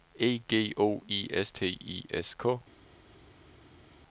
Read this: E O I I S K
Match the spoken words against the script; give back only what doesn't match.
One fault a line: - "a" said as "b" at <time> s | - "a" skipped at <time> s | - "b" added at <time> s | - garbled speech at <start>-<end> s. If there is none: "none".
- "G" added at 0.5 s
- "S T" added at 1.3 s